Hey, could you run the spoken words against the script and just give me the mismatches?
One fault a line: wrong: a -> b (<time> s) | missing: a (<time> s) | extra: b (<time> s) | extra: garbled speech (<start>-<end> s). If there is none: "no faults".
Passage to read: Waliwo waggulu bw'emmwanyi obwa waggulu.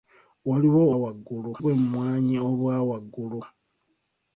no faults